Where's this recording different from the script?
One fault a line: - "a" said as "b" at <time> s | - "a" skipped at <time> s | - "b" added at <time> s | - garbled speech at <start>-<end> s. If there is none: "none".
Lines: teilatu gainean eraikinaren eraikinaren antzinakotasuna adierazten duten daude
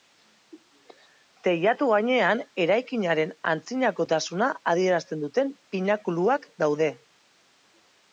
- "eraikinaren" skipped at 3.4 s
- "pinakuluak" added at 5.8 s